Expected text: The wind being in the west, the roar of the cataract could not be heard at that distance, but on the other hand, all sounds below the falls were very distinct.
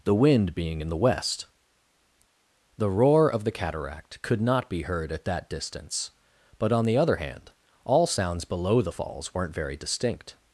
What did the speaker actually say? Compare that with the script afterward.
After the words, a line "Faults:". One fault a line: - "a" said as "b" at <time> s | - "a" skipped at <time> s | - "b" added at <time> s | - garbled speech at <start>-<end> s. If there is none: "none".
The wind being in the west, the roar of the cataract could not be heard at that distance, but on the other hand, all sounds below the falls weren't very distinct.
Faults:
- "were" said as "weren't" at 9.3 s